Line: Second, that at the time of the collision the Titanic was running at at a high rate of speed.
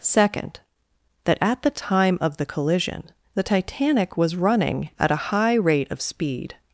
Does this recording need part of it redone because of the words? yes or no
yes